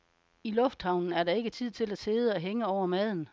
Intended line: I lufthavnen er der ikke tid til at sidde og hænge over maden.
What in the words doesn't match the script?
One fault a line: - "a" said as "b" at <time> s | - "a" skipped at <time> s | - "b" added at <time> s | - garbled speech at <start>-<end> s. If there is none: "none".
none